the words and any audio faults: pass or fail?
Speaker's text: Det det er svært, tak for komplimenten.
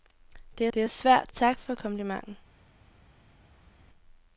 pass